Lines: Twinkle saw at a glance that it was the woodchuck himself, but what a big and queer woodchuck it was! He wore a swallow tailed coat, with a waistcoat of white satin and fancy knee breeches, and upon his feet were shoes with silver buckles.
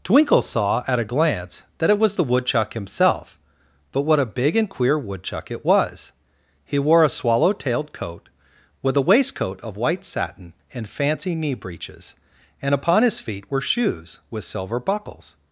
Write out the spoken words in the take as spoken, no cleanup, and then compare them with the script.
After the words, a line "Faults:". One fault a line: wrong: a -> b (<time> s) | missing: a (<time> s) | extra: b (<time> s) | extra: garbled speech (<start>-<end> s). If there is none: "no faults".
Twinkle saw at a glance that it was the woodchuck himself, but what a big and queer woodchuck it was! He wore a swallow tailed coat, with a waistcoat of white satin and fancy knee breeches, and upon his feet were shoes with silver buckles.
Faults:
no faults